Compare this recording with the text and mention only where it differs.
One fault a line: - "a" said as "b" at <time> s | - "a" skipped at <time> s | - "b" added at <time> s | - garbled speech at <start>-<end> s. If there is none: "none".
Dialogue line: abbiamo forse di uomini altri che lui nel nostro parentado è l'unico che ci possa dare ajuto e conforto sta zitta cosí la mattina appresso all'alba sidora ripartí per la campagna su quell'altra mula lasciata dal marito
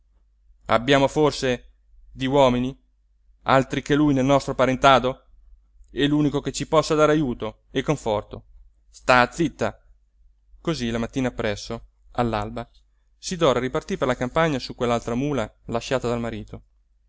none